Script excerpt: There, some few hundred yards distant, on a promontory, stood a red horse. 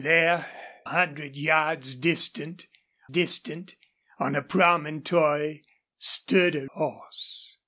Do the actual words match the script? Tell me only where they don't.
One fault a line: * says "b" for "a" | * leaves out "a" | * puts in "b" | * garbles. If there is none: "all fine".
* leaves out "some few"
* puts in "distant"
* leaves out "red"